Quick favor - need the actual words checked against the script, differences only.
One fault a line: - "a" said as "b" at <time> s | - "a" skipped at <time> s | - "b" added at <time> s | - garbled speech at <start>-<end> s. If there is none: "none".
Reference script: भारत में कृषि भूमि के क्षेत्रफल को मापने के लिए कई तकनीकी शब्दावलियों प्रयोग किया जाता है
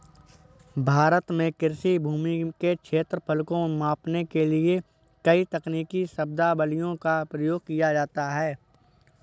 - "का" added at 7.0 s